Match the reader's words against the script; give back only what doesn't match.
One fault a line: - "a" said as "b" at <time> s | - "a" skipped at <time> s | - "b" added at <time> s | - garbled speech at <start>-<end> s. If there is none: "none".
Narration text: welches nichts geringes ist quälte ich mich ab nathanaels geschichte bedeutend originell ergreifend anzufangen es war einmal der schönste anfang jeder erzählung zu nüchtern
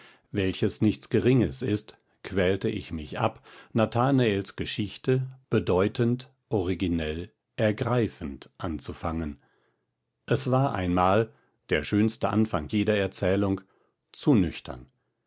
none